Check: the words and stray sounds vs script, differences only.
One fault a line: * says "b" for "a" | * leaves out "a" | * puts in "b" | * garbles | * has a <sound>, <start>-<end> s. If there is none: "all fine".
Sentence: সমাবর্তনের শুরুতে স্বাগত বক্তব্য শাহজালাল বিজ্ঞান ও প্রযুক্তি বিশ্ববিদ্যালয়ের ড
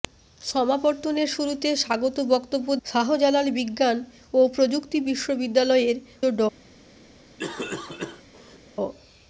* has a cough, 7.4-8.6 s